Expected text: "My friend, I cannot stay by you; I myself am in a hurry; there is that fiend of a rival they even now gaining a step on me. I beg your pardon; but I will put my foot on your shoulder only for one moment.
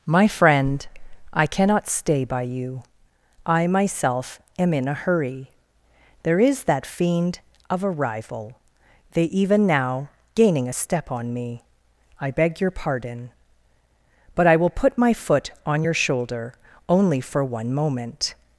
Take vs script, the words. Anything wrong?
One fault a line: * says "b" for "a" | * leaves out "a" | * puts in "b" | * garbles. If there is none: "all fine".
all fine